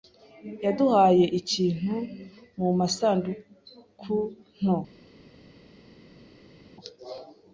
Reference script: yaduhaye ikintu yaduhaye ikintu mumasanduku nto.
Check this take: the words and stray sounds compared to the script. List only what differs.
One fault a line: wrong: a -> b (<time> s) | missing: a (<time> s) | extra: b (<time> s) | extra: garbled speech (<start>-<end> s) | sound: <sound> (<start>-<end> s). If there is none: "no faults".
missing: yaduhaye ikintu (1.9 s)